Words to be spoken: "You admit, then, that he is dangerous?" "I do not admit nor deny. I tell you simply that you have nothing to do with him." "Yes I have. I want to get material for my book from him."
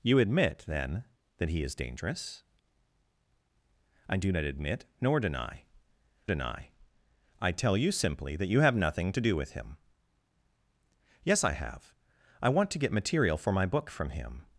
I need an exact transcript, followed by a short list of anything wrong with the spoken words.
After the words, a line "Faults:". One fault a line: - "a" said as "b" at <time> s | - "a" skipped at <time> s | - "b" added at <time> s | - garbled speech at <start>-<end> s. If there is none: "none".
"You admit, then, that he is dangerous?" "I do not admit nor deny deny. I tell you simply that you have nothing to do with him." "Yes I have. I want to get material for my book from him."
Faults:
- "deny" added at 6.2 s